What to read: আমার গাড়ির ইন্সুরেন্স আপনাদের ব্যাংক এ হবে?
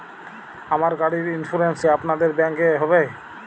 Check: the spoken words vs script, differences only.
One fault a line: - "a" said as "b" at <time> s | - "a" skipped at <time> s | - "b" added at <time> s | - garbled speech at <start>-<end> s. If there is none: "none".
none